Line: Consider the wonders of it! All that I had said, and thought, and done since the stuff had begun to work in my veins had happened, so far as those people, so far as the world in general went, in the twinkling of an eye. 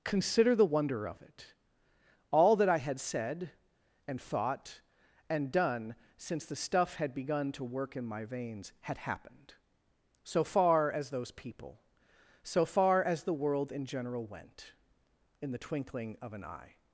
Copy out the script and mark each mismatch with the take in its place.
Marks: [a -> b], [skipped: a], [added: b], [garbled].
Consider the [wonders -> wonder] of it! All that I had said, and thought, and done since the stuff had begun to work in my veins had happened, so far as those people, so far as the world in general went, in the twinkling of an eye.